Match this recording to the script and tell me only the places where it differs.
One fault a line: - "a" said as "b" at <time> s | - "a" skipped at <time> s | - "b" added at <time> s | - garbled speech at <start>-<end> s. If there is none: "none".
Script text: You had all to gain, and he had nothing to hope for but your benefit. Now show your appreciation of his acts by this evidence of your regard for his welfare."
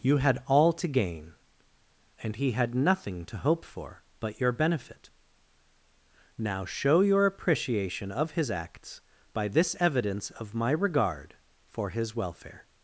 - "your" said as "my" at 10.6 s